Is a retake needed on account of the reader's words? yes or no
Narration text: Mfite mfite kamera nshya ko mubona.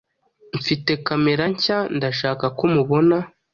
yes